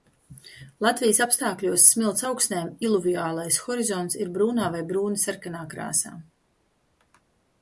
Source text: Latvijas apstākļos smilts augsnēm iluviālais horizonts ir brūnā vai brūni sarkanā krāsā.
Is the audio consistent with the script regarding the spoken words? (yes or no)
yes